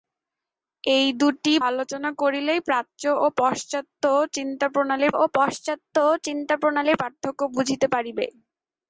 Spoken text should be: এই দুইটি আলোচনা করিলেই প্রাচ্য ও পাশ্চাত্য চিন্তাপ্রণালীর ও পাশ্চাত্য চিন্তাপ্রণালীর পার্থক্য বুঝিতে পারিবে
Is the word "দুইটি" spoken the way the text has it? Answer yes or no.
yes